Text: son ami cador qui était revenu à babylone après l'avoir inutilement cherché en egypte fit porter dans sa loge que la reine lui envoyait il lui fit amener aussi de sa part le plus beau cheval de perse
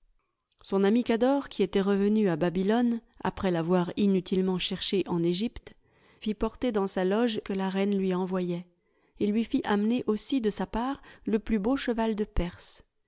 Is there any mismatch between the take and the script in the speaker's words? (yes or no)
no